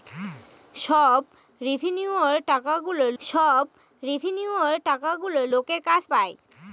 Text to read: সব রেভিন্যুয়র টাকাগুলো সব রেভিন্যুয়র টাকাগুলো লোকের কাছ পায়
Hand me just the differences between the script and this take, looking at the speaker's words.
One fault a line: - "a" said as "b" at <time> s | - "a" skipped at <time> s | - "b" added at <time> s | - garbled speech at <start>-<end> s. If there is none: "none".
none